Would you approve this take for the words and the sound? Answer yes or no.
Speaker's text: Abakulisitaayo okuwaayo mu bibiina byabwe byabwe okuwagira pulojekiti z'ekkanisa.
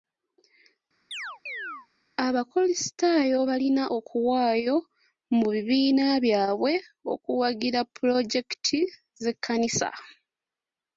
no